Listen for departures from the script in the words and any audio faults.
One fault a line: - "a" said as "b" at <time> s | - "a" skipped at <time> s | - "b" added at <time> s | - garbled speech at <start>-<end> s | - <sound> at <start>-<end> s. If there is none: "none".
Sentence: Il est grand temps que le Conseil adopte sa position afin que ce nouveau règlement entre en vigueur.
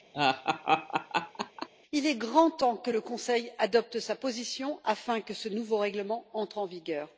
- laugh at 0.1-1.7 s